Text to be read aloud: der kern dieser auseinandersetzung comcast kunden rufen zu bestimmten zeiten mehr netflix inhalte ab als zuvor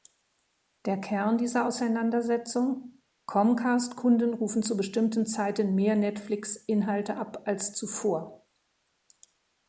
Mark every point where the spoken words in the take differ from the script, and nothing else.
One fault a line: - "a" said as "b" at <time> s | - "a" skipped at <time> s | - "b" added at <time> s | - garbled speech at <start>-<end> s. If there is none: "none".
none